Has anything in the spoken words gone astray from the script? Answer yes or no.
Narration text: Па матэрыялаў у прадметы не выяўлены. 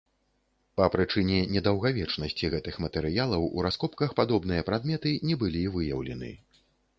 yes